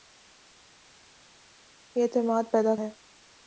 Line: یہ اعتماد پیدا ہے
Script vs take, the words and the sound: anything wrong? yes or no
no